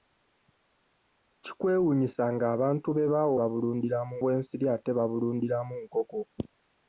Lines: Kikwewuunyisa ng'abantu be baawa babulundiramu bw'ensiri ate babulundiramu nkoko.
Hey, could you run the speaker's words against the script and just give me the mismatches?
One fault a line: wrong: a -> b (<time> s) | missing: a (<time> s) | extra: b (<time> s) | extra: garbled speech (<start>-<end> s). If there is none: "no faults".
no faults